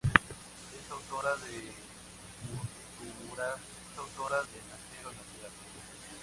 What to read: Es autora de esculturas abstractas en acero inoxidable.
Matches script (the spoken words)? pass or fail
fail